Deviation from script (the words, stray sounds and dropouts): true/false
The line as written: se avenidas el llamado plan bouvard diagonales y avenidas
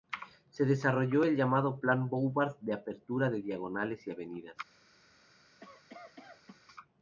true